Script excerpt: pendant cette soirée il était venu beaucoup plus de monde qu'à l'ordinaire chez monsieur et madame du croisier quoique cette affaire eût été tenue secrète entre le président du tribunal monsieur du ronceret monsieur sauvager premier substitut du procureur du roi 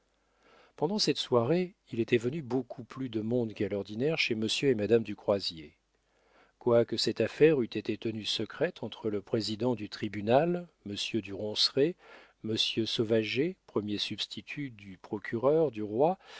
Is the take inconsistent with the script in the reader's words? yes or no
no